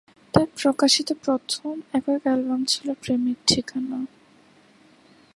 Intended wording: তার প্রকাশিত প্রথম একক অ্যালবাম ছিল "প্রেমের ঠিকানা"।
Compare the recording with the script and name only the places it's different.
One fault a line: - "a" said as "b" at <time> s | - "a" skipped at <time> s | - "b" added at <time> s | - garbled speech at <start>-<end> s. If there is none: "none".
none